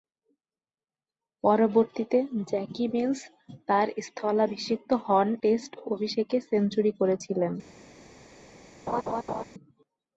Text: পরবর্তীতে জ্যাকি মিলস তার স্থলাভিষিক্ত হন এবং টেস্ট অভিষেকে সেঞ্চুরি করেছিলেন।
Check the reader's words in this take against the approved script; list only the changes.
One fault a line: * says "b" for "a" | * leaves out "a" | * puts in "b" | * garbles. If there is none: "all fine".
* leaves out "এবং"